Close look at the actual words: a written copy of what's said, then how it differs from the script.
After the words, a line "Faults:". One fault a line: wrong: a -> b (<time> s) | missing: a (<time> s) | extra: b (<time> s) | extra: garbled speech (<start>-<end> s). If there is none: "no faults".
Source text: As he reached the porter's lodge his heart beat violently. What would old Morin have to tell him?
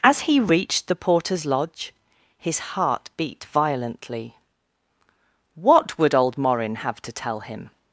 As he reached the porter's lodge his heart beat violently. What would old Morin have to tell him?
Faults:
no faults